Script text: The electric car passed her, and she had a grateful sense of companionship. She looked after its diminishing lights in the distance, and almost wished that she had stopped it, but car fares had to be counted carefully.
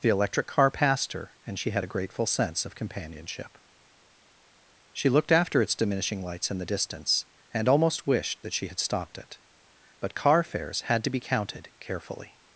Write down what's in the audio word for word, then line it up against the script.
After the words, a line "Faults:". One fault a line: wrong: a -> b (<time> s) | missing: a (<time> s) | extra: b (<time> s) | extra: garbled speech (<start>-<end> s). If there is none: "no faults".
The electric car passed her, and she had a grateful sense of companionship. She looked after its diminishing lights in the distance, and almost wished that she had stopped it, but car fares had to be counted carefully.
Faults:
no faults